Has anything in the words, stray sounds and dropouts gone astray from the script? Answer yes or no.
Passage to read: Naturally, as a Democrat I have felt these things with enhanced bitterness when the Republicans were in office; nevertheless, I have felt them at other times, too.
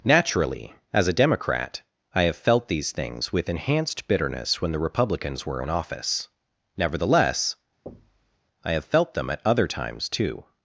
yes